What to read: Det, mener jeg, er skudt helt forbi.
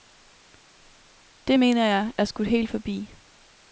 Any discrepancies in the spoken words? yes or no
no